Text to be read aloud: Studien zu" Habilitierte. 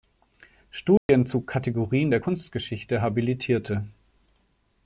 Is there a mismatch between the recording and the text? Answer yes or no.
yes